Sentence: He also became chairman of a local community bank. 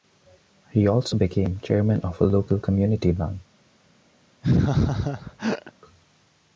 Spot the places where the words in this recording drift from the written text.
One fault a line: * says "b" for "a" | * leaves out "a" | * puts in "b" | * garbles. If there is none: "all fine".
all fine